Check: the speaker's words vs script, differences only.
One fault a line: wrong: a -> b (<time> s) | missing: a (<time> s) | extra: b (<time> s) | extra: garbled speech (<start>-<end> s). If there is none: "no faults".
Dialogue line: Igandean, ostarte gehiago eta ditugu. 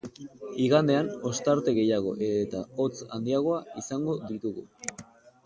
extra: hotz handiagoa izango (2.8 s)